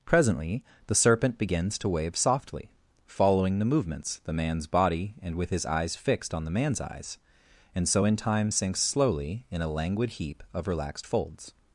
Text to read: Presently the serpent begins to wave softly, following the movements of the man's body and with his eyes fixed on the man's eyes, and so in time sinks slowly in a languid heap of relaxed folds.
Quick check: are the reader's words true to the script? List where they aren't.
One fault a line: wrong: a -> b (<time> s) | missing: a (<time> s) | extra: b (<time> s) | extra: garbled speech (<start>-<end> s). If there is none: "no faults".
missing: of (4.2 s)